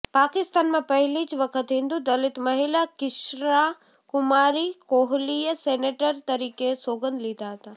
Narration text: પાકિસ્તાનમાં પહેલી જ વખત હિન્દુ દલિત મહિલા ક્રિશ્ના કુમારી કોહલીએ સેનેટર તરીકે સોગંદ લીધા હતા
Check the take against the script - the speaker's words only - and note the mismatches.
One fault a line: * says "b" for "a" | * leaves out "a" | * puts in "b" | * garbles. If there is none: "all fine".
all fine